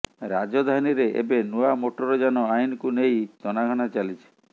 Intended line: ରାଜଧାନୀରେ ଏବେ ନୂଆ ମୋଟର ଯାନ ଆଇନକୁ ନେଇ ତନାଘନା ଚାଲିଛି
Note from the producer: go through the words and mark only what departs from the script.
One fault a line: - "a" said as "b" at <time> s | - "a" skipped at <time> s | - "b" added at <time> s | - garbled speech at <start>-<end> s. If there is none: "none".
none